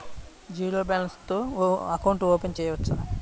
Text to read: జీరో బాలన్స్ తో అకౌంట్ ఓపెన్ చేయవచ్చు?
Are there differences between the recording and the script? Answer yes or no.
no